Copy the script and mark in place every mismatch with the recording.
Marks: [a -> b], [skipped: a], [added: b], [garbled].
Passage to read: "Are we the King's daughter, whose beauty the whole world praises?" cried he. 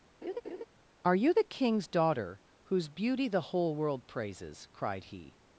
"Are [we -> you] the King's daughter, whose beauty the whole world praises?" cried he.